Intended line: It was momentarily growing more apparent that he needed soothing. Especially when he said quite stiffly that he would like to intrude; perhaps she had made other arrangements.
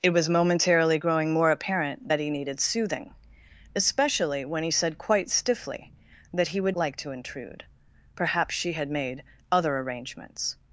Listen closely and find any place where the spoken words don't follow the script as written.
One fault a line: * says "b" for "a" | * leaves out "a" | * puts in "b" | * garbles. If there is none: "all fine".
all fine